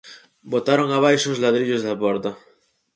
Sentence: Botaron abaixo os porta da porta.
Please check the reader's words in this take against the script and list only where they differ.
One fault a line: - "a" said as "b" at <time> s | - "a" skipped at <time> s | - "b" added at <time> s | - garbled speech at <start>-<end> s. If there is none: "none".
- "porta" said as "ladrillos" at 1.4 s